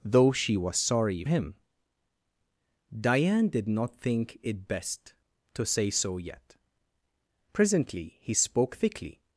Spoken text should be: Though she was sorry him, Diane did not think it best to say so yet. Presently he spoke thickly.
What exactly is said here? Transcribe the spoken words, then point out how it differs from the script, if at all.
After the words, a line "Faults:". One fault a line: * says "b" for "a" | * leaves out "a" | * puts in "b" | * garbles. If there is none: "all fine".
Though she was sorry him, Diane did not think it best to say so yet. Presently he spoke thickly.
Faults:
all fine